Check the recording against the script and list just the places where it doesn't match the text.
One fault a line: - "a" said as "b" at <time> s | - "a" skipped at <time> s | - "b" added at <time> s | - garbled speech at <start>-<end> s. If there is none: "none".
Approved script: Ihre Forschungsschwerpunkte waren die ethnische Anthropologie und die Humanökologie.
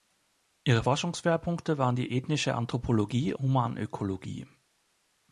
- "und die" skipped at 3.3 s